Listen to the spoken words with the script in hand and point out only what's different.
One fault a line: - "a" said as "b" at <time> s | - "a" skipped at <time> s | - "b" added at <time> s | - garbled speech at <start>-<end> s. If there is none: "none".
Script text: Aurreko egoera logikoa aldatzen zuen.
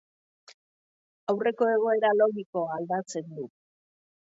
- "zuen" said as "du" at 3.4 s